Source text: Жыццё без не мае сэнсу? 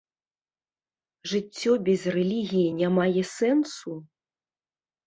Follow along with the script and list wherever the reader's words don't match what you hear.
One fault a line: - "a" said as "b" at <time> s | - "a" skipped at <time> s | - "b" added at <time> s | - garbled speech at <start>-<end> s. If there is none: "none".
- "рэлігіі" added at 2.2 s